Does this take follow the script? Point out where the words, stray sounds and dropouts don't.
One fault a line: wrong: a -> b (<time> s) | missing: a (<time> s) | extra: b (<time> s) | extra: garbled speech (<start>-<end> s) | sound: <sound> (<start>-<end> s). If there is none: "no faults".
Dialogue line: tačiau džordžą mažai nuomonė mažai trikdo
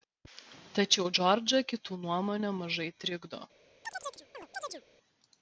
wrong: mažai -> kitų (1.7 s)
sound: chirp (3.8-4.8 s)